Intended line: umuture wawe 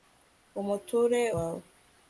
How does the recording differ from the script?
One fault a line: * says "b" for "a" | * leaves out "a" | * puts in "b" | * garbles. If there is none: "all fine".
all fine